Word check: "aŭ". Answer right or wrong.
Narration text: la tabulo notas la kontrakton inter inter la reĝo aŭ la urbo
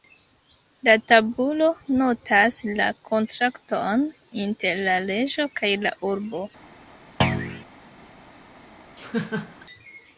wrong